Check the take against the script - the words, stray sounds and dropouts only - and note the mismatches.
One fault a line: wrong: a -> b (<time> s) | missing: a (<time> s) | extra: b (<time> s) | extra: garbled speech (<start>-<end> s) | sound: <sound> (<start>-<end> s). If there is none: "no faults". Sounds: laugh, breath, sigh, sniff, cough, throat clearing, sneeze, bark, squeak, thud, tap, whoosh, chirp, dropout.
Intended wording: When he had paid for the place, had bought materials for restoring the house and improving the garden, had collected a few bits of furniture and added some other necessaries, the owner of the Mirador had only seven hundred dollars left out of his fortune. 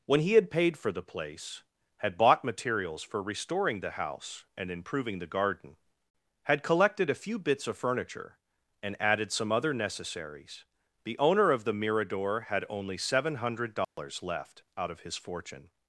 sound: dropout (13.8-14.0 s)